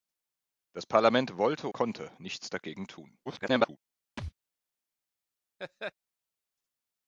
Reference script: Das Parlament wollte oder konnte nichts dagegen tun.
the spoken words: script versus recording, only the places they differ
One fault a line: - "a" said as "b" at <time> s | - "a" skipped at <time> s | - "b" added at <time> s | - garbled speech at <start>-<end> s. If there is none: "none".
- "oder" skipped at 1.7 s
- garbled speech at 3.3-3.8 s